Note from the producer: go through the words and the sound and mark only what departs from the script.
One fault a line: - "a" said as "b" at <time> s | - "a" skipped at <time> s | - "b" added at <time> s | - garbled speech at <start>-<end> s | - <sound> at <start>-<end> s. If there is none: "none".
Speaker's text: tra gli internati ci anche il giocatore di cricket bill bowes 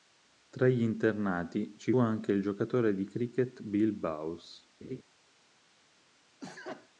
- laugh at 4.8-5.0 s
- sneeze at 6.4-6.9 s